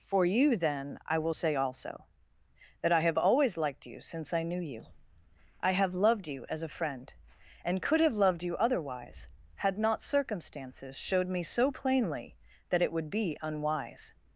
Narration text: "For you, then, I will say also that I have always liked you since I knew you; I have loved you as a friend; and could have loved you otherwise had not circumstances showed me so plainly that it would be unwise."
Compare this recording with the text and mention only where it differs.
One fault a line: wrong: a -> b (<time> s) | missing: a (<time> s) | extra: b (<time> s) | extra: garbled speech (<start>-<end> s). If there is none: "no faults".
no faults